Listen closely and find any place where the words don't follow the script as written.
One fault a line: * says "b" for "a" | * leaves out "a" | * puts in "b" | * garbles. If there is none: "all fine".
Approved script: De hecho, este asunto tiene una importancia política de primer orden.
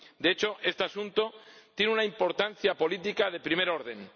all fine